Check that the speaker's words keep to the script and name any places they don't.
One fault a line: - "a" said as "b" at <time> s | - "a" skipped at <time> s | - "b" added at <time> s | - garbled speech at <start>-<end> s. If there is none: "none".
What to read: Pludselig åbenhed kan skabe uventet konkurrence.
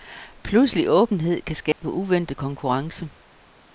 none